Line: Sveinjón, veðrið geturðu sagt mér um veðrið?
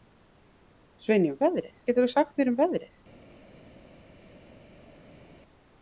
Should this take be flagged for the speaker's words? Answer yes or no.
no